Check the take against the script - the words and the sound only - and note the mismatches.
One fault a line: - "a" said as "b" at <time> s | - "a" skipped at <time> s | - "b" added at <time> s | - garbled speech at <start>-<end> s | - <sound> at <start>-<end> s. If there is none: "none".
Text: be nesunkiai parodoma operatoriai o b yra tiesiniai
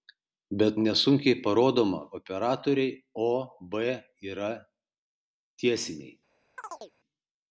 - chirp at 6.6-6.9 s